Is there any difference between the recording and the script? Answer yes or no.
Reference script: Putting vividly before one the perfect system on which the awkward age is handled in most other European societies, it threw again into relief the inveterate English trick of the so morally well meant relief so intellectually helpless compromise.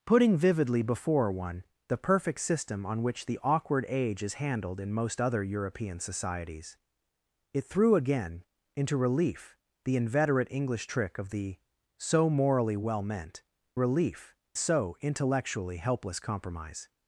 no